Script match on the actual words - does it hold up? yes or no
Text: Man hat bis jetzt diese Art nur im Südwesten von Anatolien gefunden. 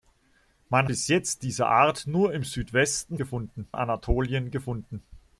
no